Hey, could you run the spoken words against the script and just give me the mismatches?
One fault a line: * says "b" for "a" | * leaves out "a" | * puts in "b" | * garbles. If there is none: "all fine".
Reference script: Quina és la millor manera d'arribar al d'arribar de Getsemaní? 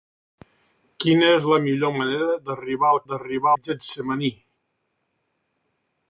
all fine